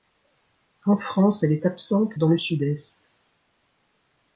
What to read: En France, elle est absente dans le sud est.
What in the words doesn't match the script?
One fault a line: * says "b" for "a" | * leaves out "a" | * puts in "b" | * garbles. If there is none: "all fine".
all fine